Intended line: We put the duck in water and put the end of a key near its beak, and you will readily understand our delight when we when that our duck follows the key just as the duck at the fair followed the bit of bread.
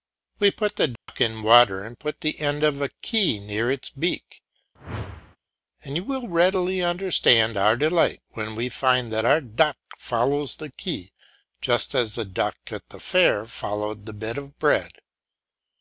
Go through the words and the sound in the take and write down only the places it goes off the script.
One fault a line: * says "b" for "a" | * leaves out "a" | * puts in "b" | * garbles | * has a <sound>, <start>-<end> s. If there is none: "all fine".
* has a dropout, 1.0-1.1 s
* has a whoosh, 4.8-5.4 s
* says "find" for "when"